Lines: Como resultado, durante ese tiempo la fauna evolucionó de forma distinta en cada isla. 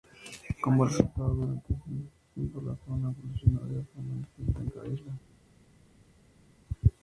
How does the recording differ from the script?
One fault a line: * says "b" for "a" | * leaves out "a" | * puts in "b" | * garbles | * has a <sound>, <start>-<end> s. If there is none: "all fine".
all fine